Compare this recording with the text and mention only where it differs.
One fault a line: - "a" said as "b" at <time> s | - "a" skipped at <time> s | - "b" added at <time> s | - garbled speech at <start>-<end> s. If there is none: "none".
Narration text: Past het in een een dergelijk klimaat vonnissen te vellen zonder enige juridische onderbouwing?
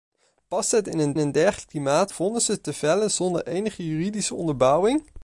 none